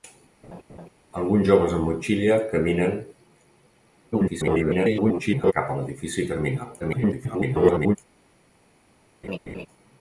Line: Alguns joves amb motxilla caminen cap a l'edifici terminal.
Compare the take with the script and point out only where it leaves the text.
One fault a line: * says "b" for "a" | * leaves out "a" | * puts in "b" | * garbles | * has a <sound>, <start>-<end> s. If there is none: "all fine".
* has a laugh, 0.4-0.9 s
* garbles
* garbles
* has a laugh, 9.2-9.7 s